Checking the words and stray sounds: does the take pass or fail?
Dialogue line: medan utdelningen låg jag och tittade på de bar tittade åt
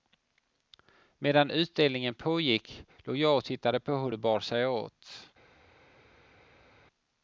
fail